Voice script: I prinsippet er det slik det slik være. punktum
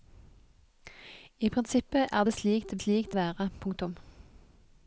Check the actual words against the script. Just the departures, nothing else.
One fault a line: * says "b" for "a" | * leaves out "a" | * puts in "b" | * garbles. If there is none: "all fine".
all fine